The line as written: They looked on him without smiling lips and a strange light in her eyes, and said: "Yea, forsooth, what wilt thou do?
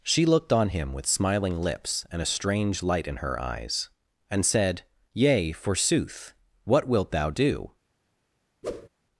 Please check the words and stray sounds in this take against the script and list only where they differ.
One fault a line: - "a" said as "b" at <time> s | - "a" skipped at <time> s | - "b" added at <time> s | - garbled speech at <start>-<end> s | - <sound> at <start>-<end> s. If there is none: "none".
- "They" said as "She" at 0.0 s
- "without" said as "with" at 0.9 s
- whoosh at 8.6-8.9 s